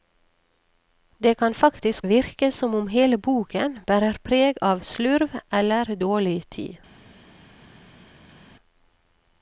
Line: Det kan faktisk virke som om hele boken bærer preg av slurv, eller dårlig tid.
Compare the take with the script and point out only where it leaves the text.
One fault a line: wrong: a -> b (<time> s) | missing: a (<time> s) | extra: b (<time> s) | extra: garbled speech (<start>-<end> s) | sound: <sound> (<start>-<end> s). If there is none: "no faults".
no faults